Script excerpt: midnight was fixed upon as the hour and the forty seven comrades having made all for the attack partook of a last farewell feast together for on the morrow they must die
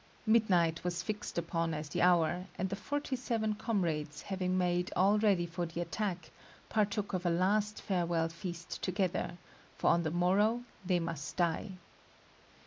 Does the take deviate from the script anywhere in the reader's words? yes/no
yes